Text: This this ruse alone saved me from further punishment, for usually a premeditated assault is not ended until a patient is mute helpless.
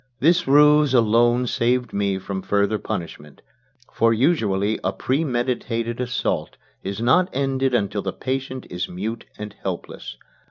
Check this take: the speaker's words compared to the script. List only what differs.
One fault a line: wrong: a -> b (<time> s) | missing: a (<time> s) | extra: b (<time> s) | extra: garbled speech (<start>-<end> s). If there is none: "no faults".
missing: this (0.5 s)
wrong: a -> the (8.0 s)
extra: and (9.4 s)